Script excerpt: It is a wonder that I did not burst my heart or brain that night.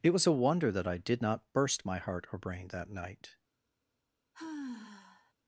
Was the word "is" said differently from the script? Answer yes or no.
yes